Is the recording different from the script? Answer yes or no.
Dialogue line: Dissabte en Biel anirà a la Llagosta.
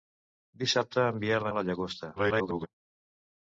yes